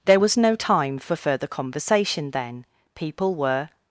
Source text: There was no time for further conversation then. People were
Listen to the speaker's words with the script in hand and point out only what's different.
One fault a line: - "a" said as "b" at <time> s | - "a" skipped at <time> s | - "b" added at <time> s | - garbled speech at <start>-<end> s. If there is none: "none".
none